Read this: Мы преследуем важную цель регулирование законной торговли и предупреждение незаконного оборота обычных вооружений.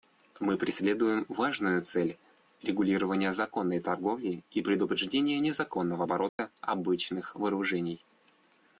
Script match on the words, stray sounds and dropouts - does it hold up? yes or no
no